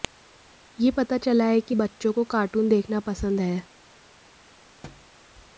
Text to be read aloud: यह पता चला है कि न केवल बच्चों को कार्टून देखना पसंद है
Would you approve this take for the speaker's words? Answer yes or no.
no